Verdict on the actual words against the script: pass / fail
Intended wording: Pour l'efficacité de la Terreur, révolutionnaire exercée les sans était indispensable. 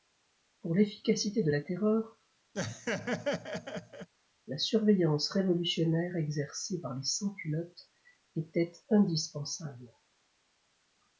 fail